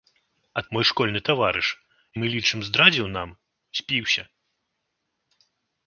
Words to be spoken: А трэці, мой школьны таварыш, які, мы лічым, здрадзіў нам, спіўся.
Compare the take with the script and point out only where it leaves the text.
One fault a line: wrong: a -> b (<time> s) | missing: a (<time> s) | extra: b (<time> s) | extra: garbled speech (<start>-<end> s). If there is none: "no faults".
missing: трэці (0.6 s)
missing: які (1.7 s)